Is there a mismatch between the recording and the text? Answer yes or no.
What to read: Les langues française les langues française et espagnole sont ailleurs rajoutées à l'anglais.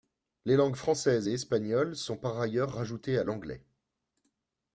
yes